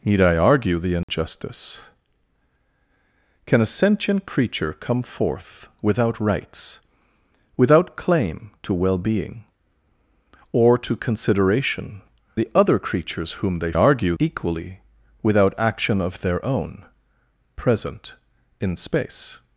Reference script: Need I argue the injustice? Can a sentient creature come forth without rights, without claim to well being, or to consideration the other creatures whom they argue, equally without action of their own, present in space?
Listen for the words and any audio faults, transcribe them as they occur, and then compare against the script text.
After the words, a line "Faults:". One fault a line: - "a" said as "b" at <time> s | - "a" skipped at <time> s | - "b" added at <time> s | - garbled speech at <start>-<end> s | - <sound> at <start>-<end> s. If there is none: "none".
Need I argue the injustice? Can a sentient creature come forth without rights, without claim to well being, or to consideration the other creatures whom they argue, equally without action of their own, present in space?
Faults:
- dropout at 1.0-1.1 s